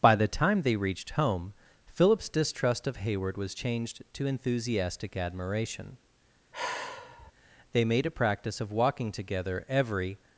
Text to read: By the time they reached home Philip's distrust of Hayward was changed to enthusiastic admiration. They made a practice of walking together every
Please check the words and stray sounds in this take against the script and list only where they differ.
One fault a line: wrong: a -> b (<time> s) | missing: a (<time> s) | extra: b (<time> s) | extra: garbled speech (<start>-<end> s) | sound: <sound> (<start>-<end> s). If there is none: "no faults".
sound: sigh (6.5-7.3 s)